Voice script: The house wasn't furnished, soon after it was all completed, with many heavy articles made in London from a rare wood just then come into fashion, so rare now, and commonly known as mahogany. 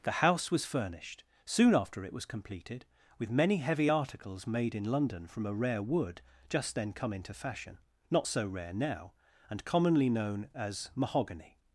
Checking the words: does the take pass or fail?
fail